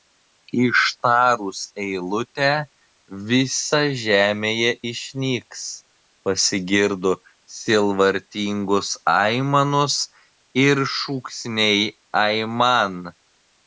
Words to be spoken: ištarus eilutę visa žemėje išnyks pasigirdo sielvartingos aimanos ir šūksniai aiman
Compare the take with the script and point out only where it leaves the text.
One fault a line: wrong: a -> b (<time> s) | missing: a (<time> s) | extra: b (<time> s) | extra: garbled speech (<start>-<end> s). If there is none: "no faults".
no faults